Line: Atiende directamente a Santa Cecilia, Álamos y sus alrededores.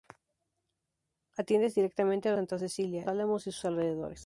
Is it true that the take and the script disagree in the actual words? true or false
false